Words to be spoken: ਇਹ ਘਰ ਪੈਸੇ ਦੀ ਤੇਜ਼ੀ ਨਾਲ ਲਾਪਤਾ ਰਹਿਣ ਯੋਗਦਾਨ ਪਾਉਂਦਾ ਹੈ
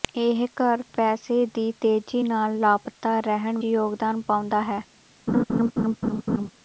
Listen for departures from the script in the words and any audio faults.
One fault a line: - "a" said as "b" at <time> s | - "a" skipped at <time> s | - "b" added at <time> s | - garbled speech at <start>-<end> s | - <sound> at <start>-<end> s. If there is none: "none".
- laugh at 5.3-6.5 s